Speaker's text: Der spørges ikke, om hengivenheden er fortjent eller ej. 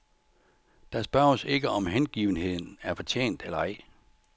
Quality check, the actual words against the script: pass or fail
pass